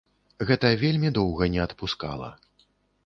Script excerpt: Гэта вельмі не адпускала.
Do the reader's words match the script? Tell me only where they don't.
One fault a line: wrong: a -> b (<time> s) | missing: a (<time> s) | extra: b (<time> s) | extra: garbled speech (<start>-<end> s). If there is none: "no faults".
extra: доўга (1.2 s)